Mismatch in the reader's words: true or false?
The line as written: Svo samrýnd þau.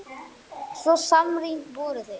true